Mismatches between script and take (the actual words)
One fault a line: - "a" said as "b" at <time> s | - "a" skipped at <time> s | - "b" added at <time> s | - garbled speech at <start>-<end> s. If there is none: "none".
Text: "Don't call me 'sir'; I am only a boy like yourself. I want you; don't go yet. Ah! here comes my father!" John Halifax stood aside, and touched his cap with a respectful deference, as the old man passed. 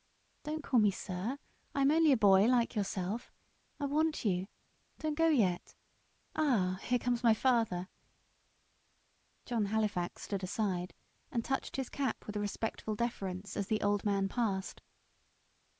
none